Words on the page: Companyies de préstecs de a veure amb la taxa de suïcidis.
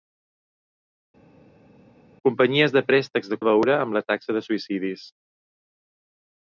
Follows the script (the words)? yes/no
yes